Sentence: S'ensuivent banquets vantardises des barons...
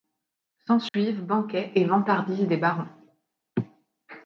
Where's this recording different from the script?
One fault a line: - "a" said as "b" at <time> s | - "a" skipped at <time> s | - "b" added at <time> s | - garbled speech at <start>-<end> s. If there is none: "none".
- "et" added at 1.7 s